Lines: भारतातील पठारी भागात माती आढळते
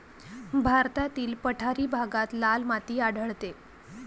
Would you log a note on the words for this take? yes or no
yes